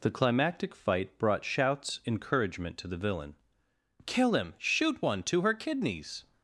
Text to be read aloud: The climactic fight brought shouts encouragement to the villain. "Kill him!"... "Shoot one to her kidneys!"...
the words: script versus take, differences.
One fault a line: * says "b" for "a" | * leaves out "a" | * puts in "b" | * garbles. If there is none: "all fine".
all fine